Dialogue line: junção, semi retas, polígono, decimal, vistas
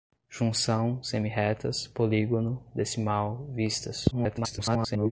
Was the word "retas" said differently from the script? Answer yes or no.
no